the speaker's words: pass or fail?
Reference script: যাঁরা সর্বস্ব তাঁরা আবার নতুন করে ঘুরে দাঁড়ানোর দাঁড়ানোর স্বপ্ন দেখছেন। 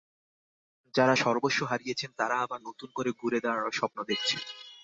fail